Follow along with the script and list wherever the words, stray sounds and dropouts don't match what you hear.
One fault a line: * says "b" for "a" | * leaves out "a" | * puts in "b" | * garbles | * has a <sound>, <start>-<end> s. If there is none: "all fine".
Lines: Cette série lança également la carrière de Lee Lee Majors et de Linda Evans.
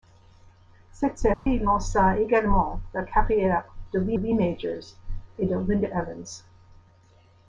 * has a dropout, 1.3-1.5 s